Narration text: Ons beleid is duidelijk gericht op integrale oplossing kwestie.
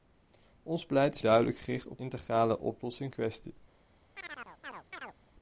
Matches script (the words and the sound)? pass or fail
fail